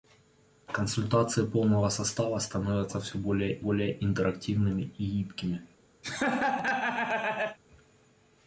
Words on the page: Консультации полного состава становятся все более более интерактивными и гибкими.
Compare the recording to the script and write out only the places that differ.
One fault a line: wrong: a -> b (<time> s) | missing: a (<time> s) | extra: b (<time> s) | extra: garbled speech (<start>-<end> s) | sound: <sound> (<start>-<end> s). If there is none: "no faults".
sound: laugh (6.0-7.6 s)